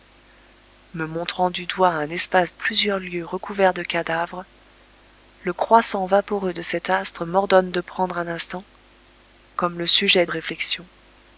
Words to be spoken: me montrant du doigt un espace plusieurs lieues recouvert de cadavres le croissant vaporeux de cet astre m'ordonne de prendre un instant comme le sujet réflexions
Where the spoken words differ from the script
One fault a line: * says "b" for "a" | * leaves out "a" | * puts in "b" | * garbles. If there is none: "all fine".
all fine